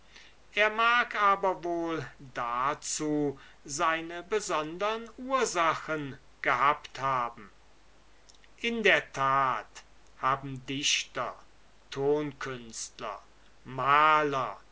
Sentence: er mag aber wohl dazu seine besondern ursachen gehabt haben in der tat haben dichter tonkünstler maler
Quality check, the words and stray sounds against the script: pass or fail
pass